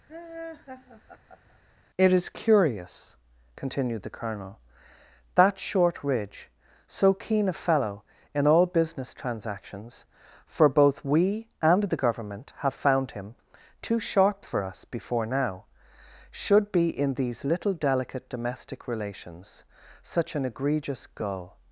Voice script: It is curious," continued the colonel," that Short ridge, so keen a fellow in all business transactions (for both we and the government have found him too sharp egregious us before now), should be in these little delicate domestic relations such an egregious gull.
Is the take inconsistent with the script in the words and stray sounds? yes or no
yes